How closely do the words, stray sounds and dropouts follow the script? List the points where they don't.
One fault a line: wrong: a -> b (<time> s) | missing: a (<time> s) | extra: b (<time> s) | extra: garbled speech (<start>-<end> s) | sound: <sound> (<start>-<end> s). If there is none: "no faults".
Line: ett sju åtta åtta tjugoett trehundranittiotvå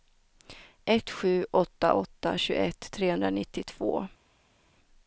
no faults